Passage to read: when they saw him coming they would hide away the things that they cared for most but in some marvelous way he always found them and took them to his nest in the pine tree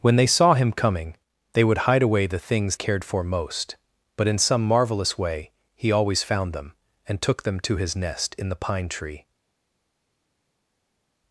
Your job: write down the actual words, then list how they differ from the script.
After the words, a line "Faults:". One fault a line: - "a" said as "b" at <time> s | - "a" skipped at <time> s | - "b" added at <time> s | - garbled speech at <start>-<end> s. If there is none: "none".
when they saw him coming they would hide away the things cared for most but in some marvelous way he always found them and took them to his nest in the pine tree
Faults:
- "that they" skipped at 2.8 s